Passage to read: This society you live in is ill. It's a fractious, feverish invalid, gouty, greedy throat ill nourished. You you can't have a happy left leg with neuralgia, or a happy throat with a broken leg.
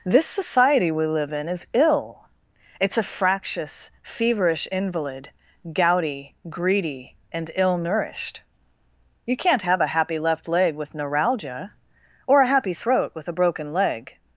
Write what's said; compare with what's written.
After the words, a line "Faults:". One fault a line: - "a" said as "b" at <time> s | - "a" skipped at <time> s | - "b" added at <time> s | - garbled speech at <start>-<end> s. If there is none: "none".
This society we live in is ill. It's a fractious, feverish invalid, gouty, greedy and ill nourished. You can't have a happy left leg with neuralgia, or a happy throat with a broken leg.
Faults:
- "you" said as "we" at 0.9 s
- "throat" said as "and" at 7.3 s
- "you" skipped at 9.4 s